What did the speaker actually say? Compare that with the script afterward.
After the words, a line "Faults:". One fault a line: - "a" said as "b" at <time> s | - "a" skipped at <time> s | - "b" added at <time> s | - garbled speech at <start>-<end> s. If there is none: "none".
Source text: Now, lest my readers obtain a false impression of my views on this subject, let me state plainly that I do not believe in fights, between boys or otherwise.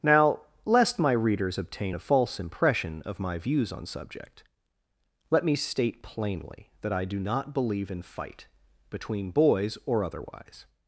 Now, lest my readers obtain a false impression of my views on subject, let me state plainly that I do not believe in fight, between boys or otherwise.
Faults:
- "this" skipped at 3.9 s
- "fights" said as "fight" at 8.0 s